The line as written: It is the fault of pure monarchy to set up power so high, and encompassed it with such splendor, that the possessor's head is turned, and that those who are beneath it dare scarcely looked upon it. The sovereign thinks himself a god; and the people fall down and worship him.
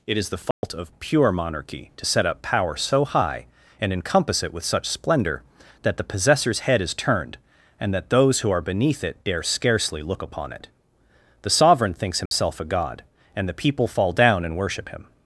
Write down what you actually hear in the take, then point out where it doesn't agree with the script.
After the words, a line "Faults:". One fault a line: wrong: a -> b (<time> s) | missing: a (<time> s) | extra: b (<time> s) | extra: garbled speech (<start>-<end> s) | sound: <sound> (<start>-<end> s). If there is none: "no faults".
It is the fault of pure monarchy to set up power so high, and encompass it with such splendor, that the possessor's head is turned, and that those who are beneath it dare scarcely look upon it. The sovereign thinks himself a god; and the people fall down and worship him.
Faults:
sound: dropout (0.5-0.6 s)
wrong: encompassed -> encompass (3.9 s)
wrong: looked -> look (10.0 s)
sound: dropout (12.3-12.3 s)